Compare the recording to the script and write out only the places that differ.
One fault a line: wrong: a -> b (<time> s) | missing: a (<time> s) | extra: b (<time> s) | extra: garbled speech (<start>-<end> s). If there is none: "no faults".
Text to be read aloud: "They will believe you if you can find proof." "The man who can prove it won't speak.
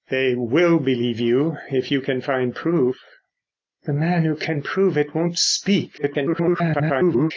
extra: garbled speech (6.0-7.3 s)